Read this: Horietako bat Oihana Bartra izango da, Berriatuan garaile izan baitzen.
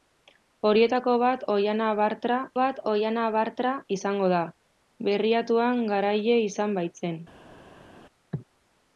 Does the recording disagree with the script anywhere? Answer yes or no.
yes